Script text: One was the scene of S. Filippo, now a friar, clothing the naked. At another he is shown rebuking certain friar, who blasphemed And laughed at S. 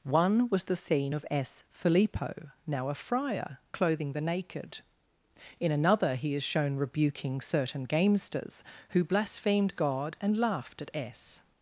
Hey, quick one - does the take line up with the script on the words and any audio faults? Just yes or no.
no